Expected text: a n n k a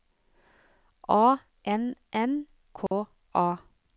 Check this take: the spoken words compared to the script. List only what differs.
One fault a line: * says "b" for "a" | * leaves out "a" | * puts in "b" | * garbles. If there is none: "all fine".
all fine